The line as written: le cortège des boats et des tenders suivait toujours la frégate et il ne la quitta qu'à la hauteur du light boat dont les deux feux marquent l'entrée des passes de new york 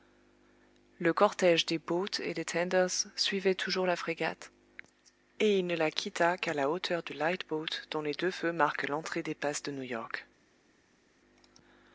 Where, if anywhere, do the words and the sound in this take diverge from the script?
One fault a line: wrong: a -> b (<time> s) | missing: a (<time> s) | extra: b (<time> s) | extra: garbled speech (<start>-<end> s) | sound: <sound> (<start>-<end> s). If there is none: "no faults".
no faults